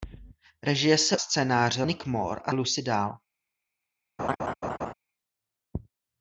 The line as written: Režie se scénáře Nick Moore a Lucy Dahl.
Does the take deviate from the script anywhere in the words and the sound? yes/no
yes